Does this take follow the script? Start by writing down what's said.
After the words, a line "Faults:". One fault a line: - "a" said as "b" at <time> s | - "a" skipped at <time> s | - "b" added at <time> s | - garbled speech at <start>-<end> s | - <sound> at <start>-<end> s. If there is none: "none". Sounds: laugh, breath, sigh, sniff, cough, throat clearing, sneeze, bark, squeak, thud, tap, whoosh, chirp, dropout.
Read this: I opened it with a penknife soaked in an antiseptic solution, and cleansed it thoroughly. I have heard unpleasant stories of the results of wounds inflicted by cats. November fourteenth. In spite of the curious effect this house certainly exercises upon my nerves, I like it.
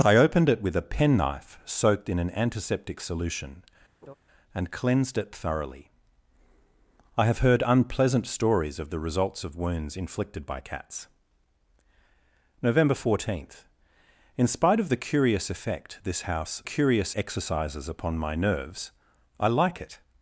I opened it with a penknife soaked in an antiseptic solution, and cleansed it thoroughly. I have heard unpleasant stories of the results of wounds inflicted by cats. November fourteenth. In spite of the curious effect this house curious exercises upon my nerves, I like it.
Faults:
- laugh at 4.0-4.1 s
- "certainly" said as "curious" at 16.6 s